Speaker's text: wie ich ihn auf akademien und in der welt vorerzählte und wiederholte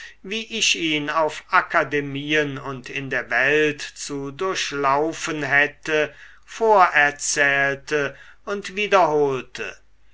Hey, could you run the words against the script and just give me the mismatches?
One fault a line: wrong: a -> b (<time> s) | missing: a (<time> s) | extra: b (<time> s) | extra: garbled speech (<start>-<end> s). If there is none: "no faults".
extra: zu durchlaufen hätte (3.8 s)